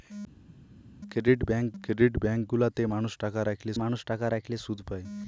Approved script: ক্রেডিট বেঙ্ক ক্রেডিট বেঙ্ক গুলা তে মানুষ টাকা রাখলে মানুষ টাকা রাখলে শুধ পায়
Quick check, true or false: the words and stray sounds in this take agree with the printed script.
true